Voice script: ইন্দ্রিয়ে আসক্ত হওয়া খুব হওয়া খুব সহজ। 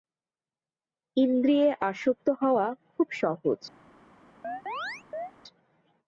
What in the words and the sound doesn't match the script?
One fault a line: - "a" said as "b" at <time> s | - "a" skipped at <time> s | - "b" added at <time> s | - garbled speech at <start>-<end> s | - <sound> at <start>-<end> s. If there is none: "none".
- "হওয়া খুব" skipped at 3.1 s
- chirp at 4.4-5.3 s